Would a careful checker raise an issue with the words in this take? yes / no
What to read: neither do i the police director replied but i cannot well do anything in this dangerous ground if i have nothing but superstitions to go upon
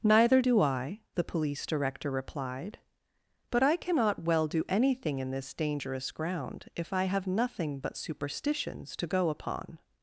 no